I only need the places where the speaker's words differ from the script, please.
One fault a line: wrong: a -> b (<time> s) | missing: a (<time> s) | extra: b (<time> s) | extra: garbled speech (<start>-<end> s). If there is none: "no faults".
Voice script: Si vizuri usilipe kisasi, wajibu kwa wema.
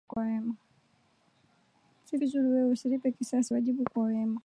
extra: wewe (2.5 s)